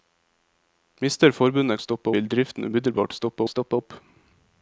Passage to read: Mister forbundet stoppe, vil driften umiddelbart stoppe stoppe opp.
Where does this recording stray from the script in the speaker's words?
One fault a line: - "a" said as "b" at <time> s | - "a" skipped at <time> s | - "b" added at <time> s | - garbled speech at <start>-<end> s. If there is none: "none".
none